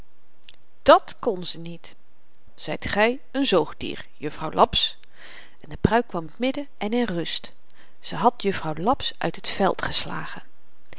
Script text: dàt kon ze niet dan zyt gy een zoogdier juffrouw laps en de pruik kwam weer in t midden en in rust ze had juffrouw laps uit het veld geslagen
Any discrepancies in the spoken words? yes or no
yes